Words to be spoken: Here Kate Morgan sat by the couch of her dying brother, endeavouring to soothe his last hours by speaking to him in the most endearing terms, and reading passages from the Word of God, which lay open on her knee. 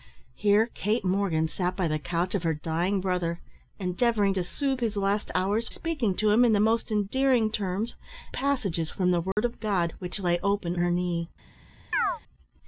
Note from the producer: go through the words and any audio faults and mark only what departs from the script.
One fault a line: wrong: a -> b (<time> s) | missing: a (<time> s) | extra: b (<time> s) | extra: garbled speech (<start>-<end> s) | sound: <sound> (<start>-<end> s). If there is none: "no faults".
missing: by (5.7 s)
missing: and reading (7.9 s)
sound: dropout (9.3-9.4 s)
missing: on (10.8 s)
sound: chirp (11.9-12.2 s)